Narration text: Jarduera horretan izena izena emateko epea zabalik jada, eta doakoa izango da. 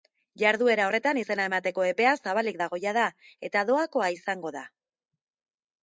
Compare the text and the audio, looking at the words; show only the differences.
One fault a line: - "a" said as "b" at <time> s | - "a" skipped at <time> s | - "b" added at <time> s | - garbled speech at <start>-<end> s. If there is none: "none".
- "izena" skipped at 1.5 s
- "dago" added at 2.6 s